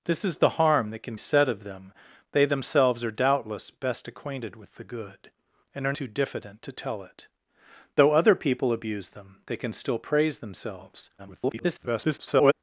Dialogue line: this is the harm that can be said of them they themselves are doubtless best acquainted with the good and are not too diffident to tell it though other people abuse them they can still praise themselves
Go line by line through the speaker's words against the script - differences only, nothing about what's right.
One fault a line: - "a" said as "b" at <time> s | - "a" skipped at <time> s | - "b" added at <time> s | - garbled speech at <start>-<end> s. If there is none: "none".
- "be" skipped at 1.1 s
- "not" skipped at 5.9 s
- garbled speech at 11.2-12.5 s